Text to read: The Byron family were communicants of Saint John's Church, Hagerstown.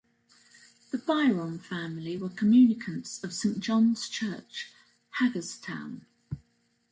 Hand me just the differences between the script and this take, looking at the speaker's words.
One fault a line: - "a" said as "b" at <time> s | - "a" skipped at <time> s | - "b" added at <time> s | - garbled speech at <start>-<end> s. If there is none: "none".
none